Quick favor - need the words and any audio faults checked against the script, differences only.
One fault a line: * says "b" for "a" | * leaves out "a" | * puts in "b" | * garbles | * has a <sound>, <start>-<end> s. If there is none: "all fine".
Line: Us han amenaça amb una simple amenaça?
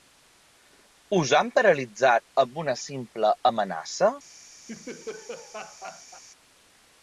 * says "paralitzat" for "amenaça"
* has a laugh, 4.7-6.2 s